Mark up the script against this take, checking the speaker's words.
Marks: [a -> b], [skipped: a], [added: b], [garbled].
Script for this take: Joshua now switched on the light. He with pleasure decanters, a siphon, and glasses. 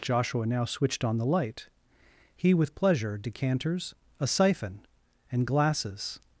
Joshua now switched on the light. He with pleasure decanters, a siphon, and glasses.